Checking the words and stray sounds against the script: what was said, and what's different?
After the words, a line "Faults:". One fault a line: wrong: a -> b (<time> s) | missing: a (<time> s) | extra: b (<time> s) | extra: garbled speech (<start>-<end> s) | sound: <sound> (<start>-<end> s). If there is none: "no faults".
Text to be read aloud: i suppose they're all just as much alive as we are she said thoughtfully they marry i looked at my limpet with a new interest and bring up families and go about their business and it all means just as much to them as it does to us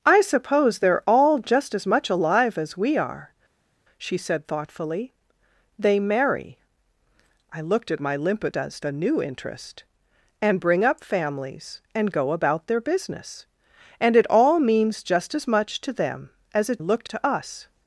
i suppose they're all just as much alive as we are she said thoughtfully they marry i looked at my limpet does a new interest and bring up families and go about their business and it all means just as much to them as it looked to us
Faults:
wrong: with -> does (8.5 s)
wrong: does -> looked (16.8 s)